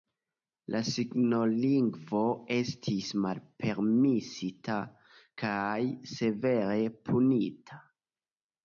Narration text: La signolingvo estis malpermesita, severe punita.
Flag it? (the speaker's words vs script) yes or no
yes